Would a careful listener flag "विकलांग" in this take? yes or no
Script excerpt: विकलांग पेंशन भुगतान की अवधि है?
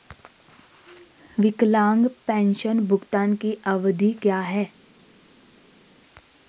no